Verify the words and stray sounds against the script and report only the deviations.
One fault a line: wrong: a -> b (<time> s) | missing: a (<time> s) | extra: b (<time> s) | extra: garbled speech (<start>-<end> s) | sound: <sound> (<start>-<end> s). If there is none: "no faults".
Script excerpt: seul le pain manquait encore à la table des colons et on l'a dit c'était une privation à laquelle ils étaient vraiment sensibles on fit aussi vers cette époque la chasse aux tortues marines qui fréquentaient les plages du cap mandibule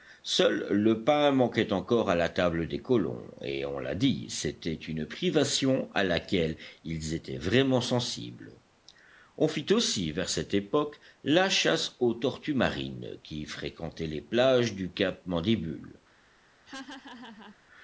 sound: laugh (16.7-17.6 s)